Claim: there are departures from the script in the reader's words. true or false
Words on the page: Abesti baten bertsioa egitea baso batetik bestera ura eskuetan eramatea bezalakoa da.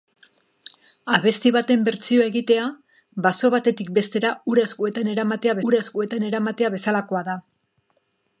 true